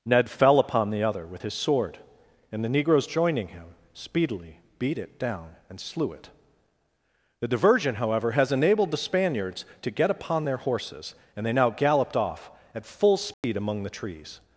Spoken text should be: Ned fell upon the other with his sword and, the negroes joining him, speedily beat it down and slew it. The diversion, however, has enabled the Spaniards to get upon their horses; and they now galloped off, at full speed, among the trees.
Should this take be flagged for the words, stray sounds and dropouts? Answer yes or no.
yes